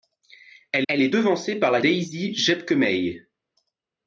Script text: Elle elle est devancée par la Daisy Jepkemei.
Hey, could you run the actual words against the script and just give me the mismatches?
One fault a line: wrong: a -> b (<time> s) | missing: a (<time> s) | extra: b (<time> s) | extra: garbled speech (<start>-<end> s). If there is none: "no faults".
no faults